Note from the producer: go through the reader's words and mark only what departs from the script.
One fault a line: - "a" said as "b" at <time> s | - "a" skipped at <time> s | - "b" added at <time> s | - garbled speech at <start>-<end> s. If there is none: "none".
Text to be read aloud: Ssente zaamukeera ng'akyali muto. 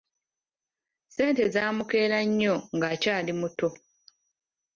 - "nnyo" added at 2.3 s